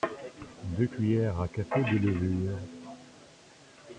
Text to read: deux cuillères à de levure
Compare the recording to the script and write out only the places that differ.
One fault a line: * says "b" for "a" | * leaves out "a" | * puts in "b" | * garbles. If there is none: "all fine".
* puts in "café"